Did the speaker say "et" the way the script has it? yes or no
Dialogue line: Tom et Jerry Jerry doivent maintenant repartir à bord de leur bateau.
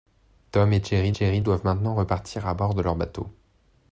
yes